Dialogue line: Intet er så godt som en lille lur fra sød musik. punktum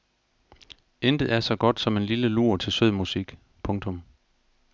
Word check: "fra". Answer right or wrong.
wrong